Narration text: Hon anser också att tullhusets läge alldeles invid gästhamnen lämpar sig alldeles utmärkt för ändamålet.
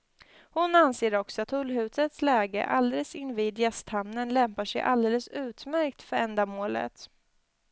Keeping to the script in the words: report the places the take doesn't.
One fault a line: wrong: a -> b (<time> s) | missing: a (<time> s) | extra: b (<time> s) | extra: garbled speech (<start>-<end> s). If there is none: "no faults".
no faults